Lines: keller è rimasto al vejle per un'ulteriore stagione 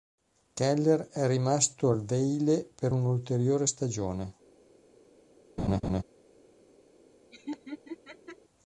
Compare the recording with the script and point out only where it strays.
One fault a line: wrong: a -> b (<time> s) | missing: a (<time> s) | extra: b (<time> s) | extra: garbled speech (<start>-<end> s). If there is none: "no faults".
no faults